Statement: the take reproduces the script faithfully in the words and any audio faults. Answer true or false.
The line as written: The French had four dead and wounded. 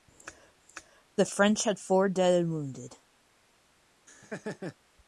false